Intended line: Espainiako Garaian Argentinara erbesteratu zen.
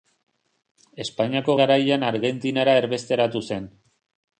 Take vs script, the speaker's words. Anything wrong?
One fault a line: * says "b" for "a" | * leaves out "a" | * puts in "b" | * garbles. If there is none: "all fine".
all fine